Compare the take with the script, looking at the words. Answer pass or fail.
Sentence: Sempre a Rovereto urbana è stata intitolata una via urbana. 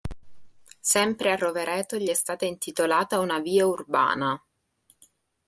fail